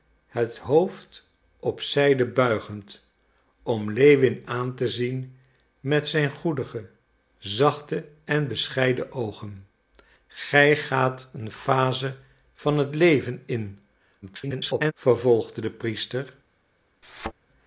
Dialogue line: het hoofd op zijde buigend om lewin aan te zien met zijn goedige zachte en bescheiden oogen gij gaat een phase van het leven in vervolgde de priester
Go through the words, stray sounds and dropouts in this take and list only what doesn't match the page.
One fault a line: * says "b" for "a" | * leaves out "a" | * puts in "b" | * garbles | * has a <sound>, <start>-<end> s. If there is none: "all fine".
* garbles
* has a thud, 17.0-17.3 s